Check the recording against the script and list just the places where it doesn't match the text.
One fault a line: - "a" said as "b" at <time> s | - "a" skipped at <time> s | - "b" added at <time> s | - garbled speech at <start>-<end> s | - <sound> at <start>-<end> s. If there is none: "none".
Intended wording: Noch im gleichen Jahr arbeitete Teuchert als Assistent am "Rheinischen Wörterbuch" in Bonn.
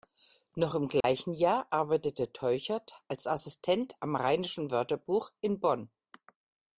- dropout at 1.0-1.0 s